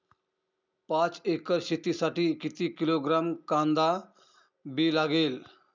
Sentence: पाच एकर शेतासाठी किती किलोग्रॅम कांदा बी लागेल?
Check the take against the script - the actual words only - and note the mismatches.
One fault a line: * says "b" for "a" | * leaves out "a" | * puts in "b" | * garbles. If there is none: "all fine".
all fine